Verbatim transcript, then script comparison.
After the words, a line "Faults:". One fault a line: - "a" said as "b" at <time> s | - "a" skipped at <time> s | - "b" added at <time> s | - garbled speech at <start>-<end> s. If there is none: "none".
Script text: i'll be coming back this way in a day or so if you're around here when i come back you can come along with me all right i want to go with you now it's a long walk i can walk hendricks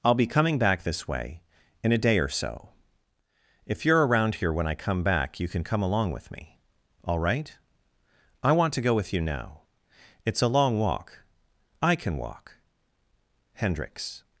i'll be coming back this way in a day or so if you're around here when i come back you can come along with me all right i want to go with you now it's a long walk i can walk hendricks
Faults:
none